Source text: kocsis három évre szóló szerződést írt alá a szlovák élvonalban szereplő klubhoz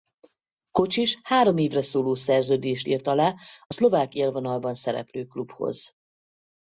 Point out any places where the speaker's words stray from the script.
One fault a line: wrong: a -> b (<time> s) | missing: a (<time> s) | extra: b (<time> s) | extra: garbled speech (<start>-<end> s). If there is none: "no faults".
no faults